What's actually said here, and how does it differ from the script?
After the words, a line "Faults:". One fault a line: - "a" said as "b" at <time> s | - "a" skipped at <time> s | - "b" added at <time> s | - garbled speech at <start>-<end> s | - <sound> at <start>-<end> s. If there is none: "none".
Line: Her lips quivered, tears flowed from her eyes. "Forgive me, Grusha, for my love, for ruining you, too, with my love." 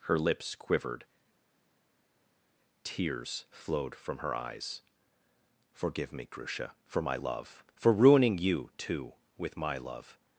Her lips quivered, tears flowed from her eyes. "Forgive me, Grusha, for my love, for ruining you, too, with my love."
Faults:
none